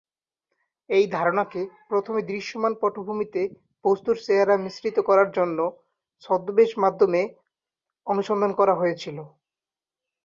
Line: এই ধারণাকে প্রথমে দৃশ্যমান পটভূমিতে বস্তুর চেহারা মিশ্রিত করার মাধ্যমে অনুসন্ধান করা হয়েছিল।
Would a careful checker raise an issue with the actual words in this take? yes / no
yes